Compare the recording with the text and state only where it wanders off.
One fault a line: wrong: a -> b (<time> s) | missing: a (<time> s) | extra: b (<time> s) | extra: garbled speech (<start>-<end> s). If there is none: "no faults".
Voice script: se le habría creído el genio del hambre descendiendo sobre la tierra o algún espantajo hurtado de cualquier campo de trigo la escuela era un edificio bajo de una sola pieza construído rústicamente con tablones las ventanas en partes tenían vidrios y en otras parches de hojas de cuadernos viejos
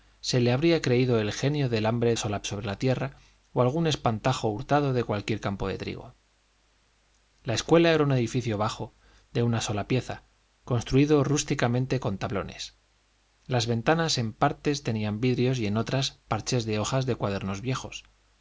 wrong: descendiendo -> sola (2.2 s)